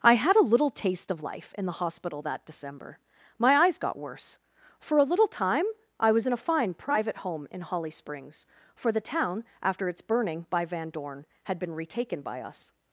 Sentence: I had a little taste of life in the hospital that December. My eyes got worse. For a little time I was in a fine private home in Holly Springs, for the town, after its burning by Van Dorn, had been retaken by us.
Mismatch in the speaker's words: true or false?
false